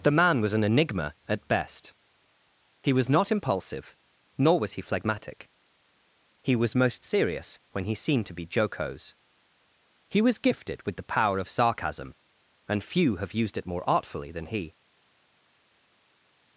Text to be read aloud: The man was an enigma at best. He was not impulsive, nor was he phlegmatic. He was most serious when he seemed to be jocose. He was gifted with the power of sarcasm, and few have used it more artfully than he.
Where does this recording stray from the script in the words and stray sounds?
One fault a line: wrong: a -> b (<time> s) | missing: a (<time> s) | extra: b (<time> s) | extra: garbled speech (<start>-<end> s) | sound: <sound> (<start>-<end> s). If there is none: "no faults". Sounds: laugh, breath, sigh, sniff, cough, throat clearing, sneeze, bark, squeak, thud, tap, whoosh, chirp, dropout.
no faults